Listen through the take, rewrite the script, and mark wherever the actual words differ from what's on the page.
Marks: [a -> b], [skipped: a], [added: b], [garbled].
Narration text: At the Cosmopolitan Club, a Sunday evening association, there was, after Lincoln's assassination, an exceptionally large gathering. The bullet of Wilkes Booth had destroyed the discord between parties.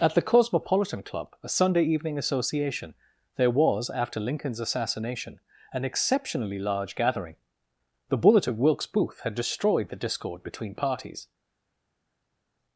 At the Cosmopolitan Club, a Sunday evening association, there was, after Lincoln's assassination, an exceptionally large gathering. The bullet of Wilkes Booth had destroyed the discord between parties.